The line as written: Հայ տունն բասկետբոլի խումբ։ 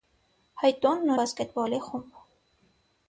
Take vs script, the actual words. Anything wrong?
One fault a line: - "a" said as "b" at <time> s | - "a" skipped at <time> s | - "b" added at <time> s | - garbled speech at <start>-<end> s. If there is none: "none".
none